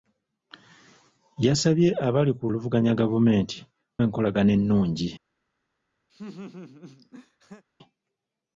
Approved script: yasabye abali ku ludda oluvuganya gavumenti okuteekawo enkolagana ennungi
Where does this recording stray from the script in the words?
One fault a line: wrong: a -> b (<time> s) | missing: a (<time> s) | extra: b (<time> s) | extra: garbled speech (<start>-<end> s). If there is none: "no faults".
missing: ludda (2.4 s)
missing: okuteekawo (3.6 s)